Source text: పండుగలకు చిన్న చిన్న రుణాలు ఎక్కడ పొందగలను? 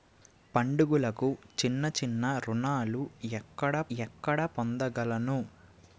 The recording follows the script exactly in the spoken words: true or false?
false